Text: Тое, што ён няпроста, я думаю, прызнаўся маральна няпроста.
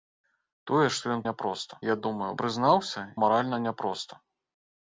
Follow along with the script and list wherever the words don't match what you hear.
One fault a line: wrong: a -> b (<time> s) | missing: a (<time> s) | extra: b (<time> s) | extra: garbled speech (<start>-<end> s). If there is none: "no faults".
no faults